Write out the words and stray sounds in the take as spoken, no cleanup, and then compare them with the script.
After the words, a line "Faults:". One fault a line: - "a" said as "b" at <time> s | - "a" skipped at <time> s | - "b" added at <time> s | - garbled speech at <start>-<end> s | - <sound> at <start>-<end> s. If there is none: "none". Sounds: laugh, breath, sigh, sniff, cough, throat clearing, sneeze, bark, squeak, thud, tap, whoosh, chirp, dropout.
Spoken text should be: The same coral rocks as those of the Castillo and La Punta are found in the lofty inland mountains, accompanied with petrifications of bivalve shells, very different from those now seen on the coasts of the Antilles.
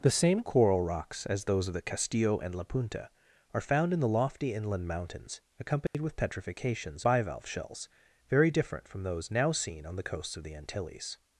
The same coral rocks as those of the Castillo and La Punta are found in the lofty inland mountains, accompanied with petrifications bivalve shells, very different from those now seen on the coasts of the Antilles.
Faults:
- dropout at 5.9-5.9 s
- "of" skipped at 7.0 s